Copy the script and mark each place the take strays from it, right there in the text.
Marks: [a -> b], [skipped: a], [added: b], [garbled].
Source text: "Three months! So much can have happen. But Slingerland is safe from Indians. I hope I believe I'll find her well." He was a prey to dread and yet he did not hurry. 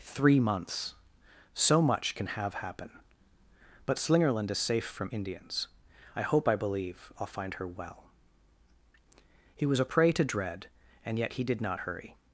"Three months! So much can have happen. But Slingerland is safe from Indians. I hope I believe I'll find her well." He was a prey to dread and yet he did not hurry.